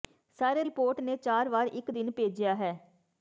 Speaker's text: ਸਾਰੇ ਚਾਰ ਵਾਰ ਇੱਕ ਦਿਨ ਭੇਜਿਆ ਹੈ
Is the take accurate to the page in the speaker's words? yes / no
no